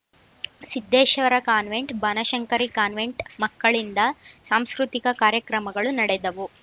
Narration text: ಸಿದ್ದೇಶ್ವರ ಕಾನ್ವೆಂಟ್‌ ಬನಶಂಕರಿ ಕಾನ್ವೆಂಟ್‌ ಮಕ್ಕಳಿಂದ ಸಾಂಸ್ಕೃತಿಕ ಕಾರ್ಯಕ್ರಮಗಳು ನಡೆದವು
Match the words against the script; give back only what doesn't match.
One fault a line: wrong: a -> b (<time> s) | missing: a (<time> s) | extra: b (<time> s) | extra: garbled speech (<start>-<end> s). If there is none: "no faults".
no faults